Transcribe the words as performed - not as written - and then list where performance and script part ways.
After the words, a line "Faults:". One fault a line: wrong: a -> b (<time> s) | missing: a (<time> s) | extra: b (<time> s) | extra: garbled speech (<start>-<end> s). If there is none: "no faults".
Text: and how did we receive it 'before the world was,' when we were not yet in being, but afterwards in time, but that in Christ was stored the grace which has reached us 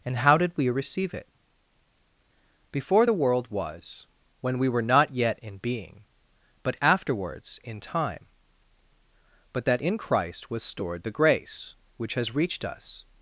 and how did we receive it 'before the world was,' when we were not yet in being, but afterwards in time, but that in Christ was stored the grace which has reached us
Faults:
no faults